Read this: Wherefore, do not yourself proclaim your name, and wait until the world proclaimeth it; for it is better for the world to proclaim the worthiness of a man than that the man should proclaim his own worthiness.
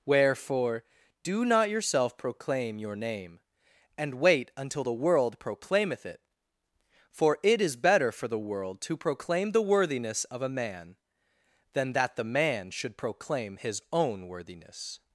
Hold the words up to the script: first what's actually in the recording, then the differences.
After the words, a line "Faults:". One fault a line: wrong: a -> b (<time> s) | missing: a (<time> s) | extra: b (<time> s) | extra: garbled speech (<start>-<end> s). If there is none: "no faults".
Wherefore, do not yourself proclaim your name, and wait until the world proclaimeth it; for it is better for the world to proclaim the worthiness of a man than that the man should proclaim his own worthiness.
Faults:
no faults